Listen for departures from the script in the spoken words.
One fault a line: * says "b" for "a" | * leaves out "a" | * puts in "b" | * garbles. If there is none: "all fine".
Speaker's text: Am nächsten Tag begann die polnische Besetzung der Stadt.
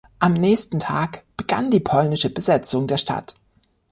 all fine